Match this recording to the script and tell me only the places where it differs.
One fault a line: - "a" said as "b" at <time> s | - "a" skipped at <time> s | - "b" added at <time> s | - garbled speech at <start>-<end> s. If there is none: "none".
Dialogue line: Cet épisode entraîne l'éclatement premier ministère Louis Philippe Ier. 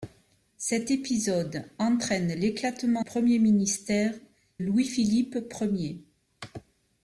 none